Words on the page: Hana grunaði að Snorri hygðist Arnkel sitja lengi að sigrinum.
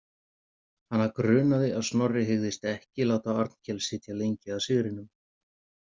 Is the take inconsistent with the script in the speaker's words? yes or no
yes